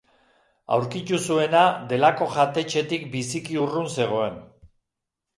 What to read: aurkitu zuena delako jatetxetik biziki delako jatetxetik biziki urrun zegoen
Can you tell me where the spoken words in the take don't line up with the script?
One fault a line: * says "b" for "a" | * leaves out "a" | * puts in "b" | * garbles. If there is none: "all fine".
* leaves out "delako jatetxetik biziki"